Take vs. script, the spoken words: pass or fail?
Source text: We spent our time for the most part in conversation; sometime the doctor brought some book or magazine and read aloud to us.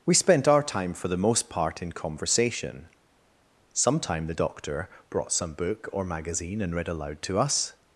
pass